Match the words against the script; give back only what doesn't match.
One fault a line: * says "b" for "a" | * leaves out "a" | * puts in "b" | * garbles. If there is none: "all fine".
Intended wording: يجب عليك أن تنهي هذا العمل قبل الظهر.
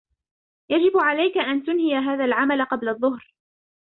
all fine